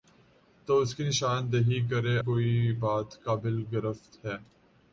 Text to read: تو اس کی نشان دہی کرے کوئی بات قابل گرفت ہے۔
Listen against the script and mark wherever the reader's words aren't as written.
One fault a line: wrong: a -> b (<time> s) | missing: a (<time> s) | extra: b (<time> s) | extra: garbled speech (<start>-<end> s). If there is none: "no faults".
no faults